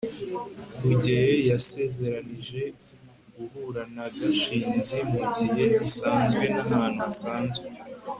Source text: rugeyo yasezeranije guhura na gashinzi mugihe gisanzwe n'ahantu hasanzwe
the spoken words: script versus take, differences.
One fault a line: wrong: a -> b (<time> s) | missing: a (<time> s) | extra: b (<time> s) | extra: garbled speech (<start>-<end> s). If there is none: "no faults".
no faults